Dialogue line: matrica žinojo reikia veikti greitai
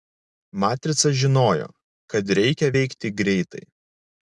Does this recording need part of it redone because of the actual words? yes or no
yes